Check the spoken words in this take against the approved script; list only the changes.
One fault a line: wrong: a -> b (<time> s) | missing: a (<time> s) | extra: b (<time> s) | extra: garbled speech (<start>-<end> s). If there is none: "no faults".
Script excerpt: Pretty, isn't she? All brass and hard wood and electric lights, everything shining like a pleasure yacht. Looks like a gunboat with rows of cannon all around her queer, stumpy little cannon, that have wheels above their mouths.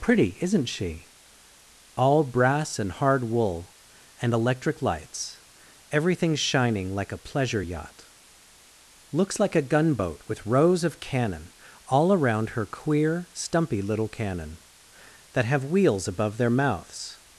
wrong: wood -> wool (3.2 s)